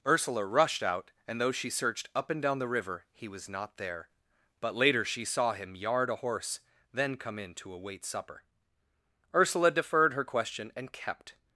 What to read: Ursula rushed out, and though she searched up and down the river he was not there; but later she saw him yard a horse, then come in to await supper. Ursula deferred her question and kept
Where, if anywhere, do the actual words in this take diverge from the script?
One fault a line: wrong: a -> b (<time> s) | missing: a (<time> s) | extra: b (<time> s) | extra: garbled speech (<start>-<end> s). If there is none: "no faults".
no faults